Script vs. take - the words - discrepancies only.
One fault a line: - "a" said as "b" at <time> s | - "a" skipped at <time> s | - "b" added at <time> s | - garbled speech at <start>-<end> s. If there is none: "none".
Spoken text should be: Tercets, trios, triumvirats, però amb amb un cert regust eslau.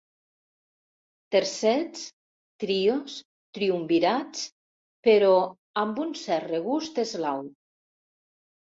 - "amb" skipped at 6.0 s